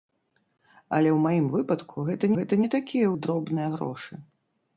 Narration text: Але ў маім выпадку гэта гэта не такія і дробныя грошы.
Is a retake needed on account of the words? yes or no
no